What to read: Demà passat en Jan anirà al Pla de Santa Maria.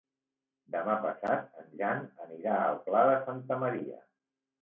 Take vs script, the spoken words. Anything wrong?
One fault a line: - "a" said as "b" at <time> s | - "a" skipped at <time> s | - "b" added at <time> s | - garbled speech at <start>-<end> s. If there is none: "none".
none